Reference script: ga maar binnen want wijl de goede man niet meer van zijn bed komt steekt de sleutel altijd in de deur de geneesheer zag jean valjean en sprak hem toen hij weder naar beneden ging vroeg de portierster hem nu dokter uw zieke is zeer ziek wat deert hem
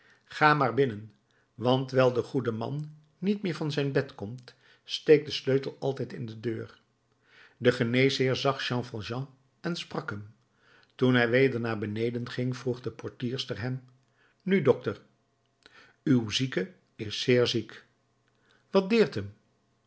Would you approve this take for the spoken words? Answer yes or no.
yes